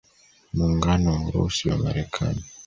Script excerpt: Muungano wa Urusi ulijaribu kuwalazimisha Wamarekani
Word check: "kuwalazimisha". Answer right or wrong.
wrong